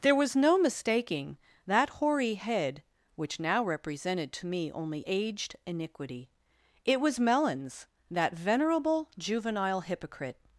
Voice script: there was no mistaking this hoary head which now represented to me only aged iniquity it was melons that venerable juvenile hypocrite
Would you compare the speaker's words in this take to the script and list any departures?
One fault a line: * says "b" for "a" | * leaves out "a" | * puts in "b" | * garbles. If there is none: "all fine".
* says "that" for "this"